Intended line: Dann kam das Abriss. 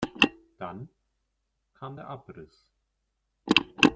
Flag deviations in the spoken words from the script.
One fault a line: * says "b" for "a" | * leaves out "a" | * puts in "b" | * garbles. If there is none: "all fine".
* says "der" for "das"